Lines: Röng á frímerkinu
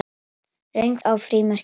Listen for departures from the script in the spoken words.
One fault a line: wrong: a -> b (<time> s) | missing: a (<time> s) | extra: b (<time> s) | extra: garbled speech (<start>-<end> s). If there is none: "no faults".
no faults